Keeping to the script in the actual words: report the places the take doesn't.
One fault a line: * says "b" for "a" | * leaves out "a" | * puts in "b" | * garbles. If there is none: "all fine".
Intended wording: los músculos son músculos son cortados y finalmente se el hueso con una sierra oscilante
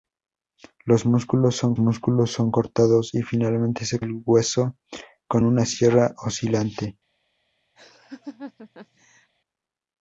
all fine